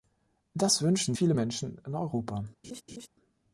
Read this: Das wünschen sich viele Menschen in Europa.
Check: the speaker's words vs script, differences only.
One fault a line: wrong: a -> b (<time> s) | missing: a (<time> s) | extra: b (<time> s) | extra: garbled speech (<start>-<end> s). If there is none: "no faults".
missing: sich (1.1 s)